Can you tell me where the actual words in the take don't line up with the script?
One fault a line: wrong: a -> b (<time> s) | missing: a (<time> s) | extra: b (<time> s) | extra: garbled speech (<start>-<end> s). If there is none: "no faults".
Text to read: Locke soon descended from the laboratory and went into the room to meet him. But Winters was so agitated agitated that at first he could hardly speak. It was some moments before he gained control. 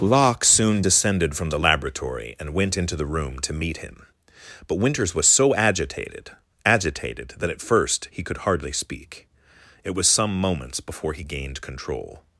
no faults